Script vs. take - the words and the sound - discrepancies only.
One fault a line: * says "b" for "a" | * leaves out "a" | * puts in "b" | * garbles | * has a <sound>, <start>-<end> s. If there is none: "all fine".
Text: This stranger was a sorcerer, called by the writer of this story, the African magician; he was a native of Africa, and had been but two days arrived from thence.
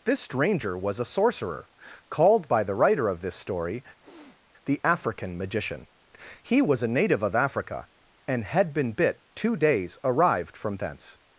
* has a sniff, 4.0-4.4 s
* says "bit" for "but"